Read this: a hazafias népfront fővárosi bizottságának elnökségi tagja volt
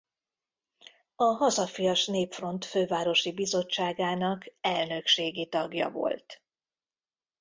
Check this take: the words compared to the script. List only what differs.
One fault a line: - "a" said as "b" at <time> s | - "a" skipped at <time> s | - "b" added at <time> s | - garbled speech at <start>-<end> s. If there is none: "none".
none